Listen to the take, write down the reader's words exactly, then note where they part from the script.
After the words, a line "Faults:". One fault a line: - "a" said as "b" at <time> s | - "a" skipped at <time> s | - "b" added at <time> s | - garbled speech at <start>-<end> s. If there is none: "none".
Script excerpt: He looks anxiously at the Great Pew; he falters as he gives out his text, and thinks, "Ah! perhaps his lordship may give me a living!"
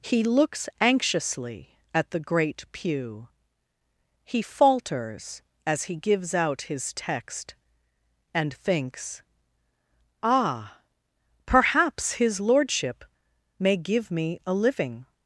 He looks anxiously at the Great Pew; he falters as he gives out his text, and thinks, "Ah! perhaps his lordship may give me a living!"
Faults:
none